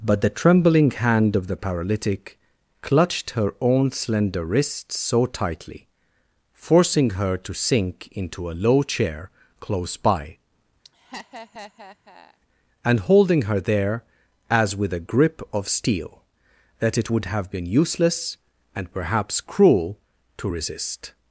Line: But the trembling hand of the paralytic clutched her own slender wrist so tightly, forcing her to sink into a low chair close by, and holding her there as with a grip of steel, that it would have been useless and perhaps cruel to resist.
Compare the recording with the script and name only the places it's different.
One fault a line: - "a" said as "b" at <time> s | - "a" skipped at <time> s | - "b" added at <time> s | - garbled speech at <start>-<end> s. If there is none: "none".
none